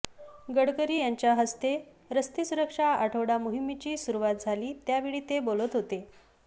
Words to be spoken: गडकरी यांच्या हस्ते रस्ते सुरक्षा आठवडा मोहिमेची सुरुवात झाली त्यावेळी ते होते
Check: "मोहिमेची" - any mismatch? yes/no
no